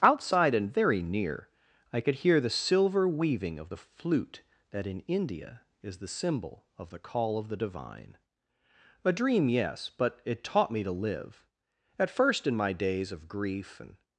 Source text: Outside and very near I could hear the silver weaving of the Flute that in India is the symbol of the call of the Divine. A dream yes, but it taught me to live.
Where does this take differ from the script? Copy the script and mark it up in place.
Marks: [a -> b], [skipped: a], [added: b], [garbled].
Outside and very near I could hear the silver weaving of the Flute that in India is the symbol of the call of the Divine. A dream yes, but it taught me to live. [added: At first in my days of grief and]